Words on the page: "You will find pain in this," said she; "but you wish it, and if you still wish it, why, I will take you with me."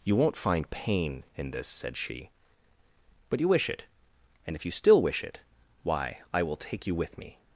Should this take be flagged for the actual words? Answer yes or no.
yes